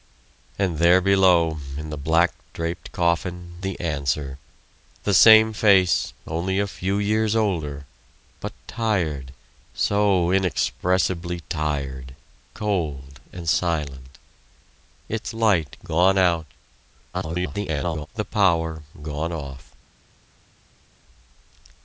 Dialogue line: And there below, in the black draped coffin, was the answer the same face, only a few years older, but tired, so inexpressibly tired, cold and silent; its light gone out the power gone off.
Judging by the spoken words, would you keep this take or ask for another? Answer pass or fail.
fail